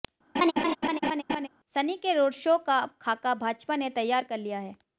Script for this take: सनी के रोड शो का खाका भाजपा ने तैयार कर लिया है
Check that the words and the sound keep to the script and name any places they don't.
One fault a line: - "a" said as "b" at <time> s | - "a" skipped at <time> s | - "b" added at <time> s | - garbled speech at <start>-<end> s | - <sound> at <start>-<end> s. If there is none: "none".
- laugh at 0.3-1.5 s